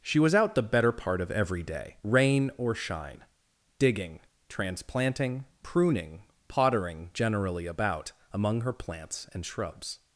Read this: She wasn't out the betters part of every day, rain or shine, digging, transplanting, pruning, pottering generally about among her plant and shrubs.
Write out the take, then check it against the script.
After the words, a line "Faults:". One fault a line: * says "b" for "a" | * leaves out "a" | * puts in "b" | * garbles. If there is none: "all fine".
She was out the better part of every day, rain or shine, digging, transplanting, pruning, pottering generally about among her plants and shrubs.
Faults:
* says "was" for "wasn't"
* says "better" for "betters"
* says "plants" for "plant"